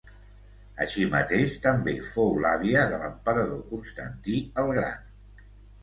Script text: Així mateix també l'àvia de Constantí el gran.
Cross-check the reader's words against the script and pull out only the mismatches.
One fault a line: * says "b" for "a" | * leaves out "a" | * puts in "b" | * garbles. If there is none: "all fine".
* puts in "fou"
* puts in "l'emperador"